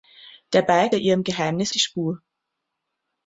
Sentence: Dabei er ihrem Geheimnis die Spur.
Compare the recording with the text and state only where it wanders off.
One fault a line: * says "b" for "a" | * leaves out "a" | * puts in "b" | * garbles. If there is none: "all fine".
all fine